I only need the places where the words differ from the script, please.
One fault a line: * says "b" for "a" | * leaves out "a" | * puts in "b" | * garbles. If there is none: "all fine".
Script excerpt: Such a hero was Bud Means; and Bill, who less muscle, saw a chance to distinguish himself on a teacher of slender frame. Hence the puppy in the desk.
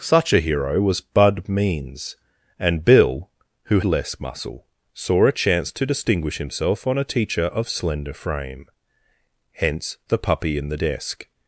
all fine